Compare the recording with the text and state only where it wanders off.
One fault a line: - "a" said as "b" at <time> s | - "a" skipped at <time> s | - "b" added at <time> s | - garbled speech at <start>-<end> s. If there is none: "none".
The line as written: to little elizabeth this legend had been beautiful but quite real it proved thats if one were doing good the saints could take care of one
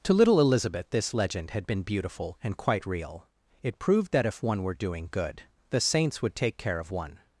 - "but" said as "and" at 2.4 s
- "thats" said as "that" at 4.1 s
- "could" said as "would" at 6.2 s